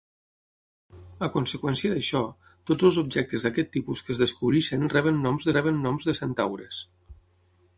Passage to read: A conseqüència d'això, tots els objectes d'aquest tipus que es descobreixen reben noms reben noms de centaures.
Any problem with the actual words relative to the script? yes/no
no